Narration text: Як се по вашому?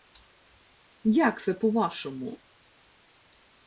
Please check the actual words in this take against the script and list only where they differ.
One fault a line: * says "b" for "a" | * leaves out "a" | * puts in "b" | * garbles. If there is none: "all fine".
all fine